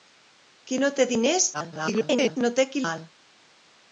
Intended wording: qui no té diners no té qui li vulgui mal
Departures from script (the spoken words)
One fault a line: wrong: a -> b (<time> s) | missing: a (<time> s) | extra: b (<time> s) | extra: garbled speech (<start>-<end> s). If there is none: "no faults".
extra: garbled speech (1.5-2.4 s)
missing: li vulgui (2.8 s)